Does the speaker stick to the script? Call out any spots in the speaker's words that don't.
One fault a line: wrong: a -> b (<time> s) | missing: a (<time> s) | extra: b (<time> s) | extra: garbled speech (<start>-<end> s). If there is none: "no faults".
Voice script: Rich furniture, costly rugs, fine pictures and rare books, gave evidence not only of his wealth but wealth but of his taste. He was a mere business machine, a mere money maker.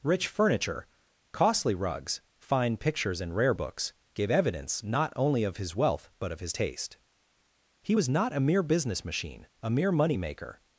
missing: wealth but (6.3 s)
extra: not (8.1 s)